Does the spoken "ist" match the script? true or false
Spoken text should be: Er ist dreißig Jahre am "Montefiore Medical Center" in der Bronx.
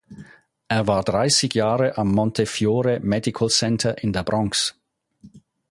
false